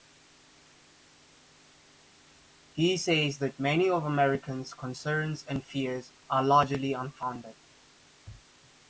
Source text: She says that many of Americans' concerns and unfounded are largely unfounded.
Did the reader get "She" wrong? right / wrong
wrong